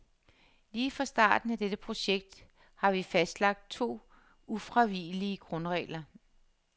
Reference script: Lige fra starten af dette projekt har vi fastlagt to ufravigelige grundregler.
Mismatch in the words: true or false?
false